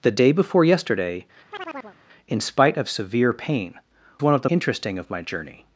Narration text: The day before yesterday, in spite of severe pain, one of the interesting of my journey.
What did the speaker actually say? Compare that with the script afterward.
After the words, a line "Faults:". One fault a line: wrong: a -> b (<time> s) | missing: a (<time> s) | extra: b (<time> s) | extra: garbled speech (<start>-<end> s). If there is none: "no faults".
The day before yesterday, in spite of severe pain, one of the interesting of my journey.
Faults:
no faults